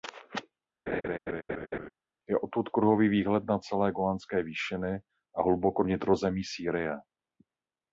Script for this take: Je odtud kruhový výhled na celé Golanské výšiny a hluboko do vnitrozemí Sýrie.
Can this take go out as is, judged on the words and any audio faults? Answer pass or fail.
fail